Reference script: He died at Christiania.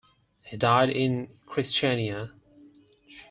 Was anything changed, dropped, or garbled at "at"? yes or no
yes